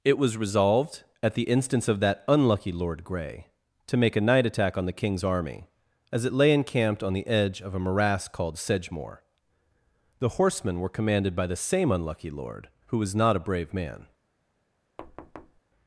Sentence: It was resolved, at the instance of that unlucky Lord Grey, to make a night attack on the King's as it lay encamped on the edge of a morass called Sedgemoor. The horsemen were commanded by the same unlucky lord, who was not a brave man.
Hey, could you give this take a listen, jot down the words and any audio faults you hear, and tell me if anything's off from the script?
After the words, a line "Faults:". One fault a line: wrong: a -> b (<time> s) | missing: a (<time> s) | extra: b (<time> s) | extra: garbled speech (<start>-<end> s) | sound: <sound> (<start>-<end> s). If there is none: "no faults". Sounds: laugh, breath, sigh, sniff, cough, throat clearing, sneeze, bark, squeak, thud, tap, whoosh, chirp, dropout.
It was resolved, at the instance of that unlucky Lord Grey, to make a night attack on the King's army, as it lay encamped on the edge of a morass called Sedgemoor. The horsemen were commanded by the same unlucky lord, who was not a brave man.
Faults:
extra: army (5.2 s)
sound: thud (15.0-15.6 s)